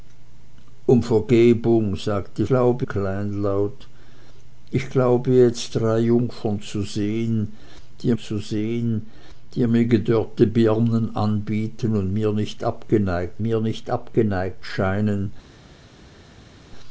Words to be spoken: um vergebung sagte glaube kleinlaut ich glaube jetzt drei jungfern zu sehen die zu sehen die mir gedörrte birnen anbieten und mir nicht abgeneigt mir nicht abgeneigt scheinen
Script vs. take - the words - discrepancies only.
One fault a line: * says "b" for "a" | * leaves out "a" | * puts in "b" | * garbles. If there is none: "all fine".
all fine